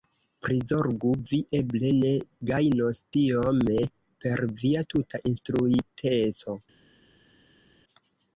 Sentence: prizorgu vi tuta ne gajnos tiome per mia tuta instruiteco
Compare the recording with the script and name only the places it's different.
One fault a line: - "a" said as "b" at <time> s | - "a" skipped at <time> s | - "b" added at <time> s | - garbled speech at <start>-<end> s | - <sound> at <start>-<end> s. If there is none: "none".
- "tuta" said as "eble" at 1.6 s
- "mia" said as "via" at 4.7 s